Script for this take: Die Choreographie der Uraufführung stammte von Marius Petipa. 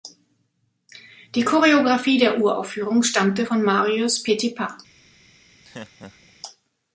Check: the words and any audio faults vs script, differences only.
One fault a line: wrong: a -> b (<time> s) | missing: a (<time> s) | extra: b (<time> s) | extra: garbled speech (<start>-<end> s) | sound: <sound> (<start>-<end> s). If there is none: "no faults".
sound: laugh (5.6-6.3 s)